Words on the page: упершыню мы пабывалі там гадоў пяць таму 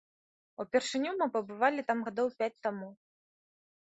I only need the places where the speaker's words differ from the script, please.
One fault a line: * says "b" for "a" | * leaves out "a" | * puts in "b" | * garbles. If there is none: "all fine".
all fine